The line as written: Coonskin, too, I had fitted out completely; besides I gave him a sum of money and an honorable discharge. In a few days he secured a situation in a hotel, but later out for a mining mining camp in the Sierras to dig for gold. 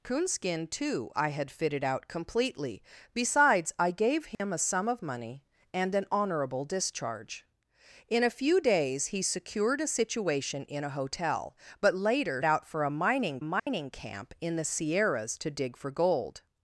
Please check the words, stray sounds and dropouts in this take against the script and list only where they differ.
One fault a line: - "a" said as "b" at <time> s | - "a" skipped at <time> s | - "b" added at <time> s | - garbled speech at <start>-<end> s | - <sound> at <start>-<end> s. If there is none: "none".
- dropout at 4.3-4.4 s
- dropout at 13.6-13.7 s